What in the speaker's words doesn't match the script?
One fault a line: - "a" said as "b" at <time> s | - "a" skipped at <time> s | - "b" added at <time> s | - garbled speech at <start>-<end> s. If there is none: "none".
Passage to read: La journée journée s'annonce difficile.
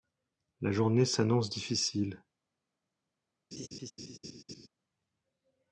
- "journée" skipped at 1.1 s